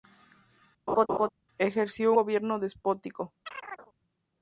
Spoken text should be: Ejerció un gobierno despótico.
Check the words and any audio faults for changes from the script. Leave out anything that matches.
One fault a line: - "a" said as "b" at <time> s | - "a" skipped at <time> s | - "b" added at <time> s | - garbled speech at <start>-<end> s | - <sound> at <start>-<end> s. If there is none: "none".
- laugh at 0.9-1.3 s
- "un" skipped at 2.1 s
- chirp at 3.5-3.9 s